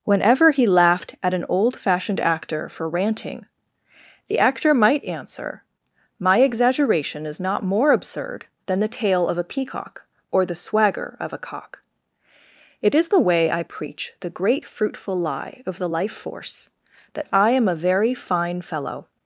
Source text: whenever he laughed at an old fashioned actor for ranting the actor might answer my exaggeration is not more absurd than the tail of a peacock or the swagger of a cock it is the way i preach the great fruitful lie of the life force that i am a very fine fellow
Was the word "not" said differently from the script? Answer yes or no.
no